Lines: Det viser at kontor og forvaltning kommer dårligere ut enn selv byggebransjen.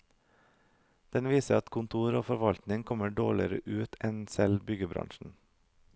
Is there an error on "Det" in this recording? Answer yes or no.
yes